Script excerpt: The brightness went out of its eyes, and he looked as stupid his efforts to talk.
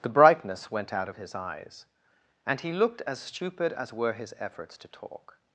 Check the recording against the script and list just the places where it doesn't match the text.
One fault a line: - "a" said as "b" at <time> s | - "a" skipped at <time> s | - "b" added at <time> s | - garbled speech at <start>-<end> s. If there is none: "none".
- "its" said as "his" at 1.1 s
- "as were" added at 3.7 s